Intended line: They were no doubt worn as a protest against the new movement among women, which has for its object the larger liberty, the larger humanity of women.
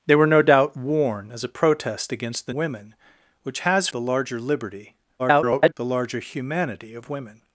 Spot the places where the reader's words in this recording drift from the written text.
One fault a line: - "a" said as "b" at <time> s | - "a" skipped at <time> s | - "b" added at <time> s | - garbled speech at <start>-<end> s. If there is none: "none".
- "new movement among" skipped at 2.5 s
- "for its object" skipped at 3.9 s
- garbled speech at 5.2-5.7 s